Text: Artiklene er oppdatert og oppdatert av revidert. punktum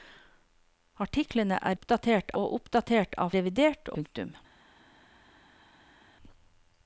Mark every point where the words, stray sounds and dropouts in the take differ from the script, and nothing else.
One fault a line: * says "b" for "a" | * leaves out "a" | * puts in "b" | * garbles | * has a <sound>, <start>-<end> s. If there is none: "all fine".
all fine